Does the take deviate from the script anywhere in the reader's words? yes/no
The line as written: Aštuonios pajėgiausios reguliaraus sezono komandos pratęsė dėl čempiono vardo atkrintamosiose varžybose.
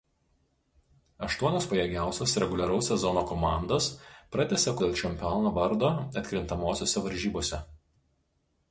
no